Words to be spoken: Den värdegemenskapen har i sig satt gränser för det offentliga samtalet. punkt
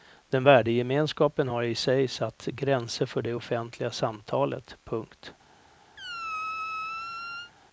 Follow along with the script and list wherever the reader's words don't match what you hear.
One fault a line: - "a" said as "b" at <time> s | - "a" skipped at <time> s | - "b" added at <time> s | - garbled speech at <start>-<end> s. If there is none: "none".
none